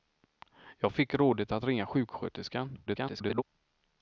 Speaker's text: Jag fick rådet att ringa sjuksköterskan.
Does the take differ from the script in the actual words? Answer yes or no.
yes